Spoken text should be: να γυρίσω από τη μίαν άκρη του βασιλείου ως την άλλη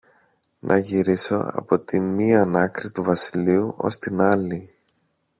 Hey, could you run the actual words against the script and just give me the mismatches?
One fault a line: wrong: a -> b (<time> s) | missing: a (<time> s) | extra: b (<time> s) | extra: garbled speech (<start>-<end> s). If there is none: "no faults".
no faults